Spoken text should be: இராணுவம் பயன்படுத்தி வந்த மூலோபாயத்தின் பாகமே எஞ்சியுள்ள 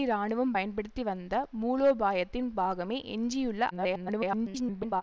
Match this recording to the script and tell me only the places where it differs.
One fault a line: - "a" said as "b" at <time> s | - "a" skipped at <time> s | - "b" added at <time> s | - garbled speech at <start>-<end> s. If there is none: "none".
- garbled speech at 3.7-5.0 s